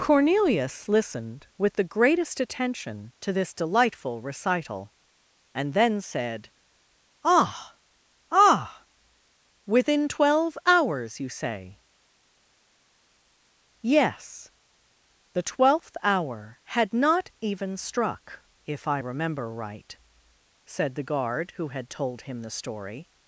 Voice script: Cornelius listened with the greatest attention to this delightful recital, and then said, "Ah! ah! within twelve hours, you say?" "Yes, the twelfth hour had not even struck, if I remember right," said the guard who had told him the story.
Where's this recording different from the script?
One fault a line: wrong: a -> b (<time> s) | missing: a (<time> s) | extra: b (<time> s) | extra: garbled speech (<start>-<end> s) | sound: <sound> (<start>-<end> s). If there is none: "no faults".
no faults